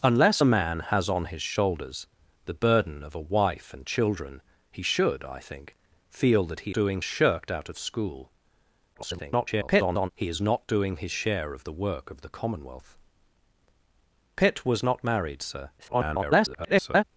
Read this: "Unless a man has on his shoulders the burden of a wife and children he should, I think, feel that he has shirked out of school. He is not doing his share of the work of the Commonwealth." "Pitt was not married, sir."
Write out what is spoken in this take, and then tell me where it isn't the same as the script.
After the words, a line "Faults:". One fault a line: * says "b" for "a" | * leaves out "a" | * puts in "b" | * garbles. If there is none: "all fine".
"Unless a man has on his shoulders the burden of a wife and children he should, I think, feel that he doing shirked out of school. [garbled] He is not doing his share of the work of the Commonwealth." "Pitt was not married, sir." [garbled]
Faults:
* says "doing" for "has"
* garbles
* garbles